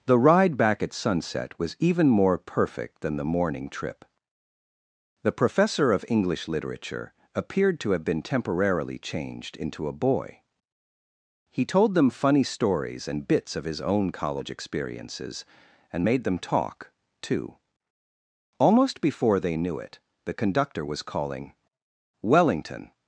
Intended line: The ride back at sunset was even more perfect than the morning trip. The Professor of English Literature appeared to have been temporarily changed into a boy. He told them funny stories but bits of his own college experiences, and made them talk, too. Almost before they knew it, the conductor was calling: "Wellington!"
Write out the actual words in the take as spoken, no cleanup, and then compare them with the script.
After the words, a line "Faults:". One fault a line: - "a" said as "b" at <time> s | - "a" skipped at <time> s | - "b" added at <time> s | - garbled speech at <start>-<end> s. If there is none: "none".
The ride back at sunset was even more perfect than the morning trip. The Professor of English Literature appeared to have been temporarily changed into a boy. He told them funny stories and bits of his own college experiences, and made them talk, too. Almost before they knew it, the conductor was calling: "Wellington!"
Faults:
- "but" said as "and" at 13.1 s